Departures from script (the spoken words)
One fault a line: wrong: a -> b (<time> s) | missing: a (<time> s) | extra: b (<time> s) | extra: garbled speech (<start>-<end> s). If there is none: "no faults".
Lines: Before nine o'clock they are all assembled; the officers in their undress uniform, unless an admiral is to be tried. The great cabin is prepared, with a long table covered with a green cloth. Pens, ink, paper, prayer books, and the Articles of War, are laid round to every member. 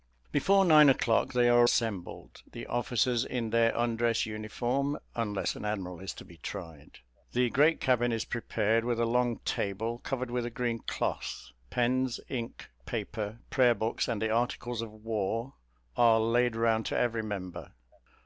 missing: all (1.7 s)